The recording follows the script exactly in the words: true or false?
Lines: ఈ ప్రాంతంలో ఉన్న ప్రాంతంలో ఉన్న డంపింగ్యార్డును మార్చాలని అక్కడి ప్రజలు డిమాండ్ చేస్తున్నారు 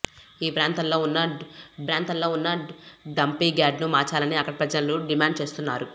true